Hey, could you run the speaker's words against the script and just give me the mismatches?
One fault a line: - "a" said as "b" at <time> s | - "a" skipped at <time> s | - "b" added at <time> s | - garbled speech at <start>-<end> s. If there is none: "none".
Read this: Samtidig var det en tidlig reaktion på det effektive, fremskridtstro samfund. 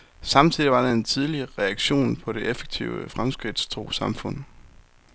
none